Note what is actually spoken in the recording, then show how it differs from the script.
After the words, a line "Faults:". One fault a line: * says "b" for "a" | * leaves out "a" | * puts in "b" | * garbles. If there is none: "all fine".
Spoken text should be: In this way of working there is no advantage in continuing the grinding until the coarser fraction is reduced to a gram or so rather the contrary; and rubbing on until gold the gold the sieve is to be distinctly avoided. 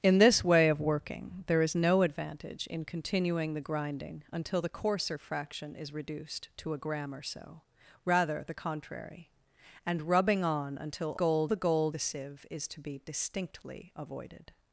In this way of working there is no advantage in continuing the grinding until the coarser fraction is reduced to a gram or so rather the contrary; and rubbing on until gold the gold the sieve is to be distinctly avoided.
Faults:
all fine